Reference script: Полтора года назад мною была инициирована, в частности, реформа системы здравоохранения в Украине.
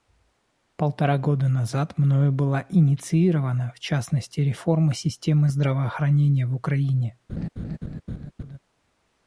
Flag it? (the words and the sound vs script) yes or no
yes